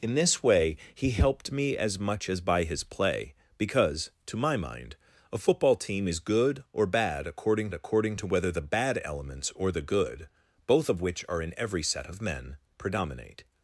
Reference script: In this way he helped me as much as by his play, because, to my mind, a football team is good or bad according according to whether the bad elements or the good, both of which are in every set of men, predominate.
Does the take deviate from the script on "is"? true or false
false